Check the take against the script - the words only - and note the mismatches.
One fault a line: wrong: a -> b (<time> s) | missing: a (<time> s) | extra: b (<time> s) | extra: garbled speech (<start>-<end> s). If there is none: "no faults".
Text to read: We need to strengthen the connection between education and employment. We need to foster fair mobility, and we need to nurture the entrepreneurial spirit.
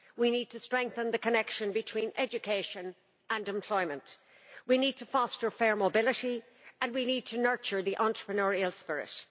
no faults